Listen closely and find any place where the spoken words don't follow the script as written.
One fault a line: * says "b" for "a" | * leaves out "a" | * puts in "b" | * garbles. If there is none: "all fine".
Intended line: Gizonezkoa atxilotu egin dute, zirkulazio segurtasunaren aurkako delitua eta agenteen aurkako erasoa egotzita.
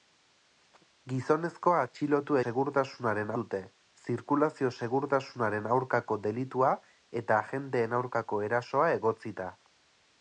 * says "segurtasunaren" for "egin"